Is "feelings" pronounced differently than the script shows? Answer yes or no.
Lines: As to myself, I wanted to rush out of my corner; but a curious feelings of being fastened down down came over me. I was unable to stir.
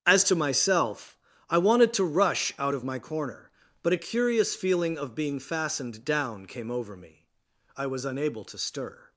yes